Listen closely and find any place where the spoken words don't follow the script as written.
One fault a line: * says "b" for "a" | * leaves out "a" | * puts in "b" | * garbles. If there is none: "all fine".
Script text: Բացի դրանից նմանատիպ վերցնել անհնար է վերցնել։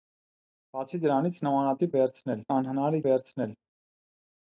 all fine